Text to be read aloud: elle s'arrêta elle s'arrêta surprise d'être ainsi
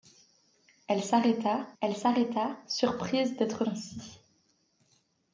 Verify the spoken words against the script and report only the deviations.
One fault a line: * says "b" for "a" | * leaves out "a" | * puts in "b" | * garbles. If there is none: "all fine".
all fine